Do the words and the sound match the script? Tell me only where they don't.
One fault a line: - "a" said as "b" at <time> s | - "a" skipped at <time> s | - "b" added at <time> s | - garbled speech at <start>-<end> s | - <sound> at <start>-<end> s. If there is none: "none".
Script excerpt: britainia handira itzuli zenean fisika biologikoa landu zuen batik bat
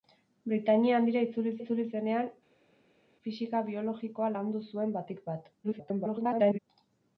- "itzuli" added at 1.6 s
- garbled speech at 5.6-6.6 s